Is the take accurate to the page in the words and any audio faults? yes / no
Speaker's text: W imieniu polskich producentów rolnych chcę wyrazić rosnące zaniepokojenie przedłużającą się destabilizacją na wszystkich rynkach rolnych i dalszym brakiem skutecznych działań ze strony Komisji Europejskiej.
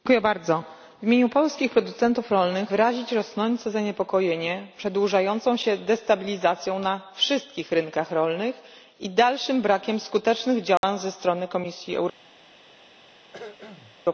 no